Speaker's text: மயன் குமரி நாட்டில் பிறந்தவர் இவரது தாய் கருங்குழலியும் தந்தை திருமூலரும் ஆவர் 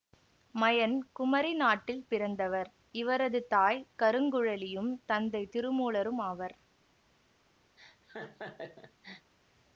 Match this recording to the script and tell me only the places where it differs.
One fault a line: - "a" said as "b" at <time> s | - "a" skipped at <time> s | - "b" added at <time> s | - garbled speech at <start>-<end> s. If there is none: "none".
none